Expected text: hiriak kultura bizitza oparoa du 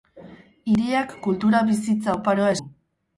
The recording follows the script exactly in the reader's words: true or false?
true